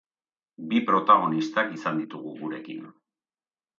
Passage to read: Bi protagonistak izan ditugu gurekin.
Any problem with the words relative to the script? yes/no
no